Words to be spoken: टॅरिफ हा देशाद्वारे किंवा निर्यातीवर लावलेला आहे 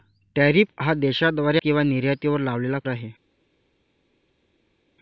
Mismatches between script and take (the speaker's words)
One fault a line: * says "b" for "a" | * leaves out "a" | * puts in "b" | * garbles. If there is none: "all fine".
all fine